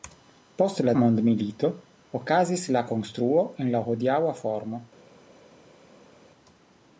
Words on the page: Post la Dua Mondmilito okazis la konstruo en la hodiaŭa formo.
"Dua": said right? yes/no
no